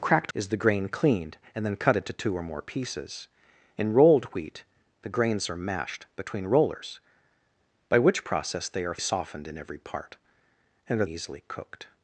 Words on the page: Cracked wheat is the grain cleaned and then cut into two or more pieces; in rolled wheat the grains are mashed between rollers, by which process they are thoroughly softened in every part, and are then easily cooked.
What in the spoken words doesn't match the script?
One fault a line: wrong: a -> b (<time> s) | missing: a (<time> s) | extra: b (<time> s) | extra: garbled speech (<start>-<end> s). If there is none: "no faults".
missing: wheat (0.3 s)
missing: thoroughly (9.0 s)
missing: then (11.0 s)